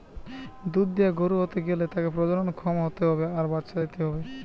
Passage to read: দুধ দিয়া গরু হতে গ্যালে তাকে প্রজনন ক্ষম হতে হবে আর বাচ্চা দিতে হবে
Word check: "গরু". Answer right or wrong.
right